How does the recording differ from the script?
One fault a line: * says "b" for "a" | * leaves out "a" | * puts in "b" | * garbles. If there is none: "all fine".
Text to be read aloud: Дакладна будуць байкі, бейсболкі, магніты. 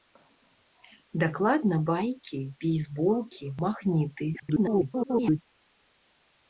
* leaves out "будуць"
* garbles